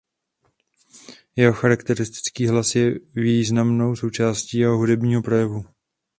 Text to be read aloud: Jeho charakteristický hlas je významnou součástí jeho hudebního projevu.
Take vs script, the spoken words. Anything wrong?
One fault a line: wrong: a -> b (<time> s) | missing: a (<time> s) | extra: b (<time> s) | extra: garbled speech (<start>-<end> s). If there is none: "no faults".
no faults